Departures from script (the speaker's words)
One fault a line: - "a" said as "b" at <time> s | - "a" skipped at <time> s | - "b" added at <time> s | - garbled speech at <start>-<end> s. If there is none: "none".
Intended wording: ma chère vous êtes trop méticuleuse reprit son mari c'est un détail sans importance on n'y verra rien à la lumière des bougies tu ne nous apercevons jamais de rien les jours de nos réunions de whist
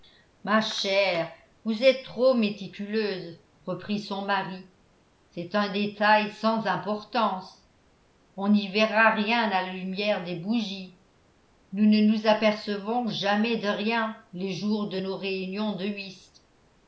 - "tu" said as "nous" at 11.7 s